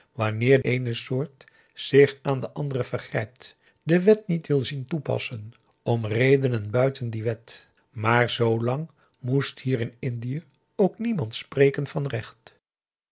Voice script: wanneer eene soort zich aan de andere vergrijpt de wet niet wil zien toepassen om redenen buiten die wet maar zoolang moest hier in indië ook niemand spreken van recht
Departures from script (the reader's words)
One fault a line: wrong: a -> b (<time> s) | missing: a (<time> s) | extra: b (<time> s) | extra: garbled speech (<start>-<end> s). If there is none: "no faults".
no faults